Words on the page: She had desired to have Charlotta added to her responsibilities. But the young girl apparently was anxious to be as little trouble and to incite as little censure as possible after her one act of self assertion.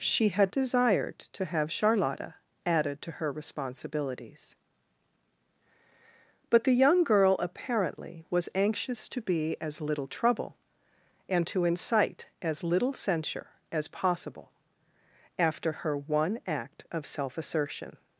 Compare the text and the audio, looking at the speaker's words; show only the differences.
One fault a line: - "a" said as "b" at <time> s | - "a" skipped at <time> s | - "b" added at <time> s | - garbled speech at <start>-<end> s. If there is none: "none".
none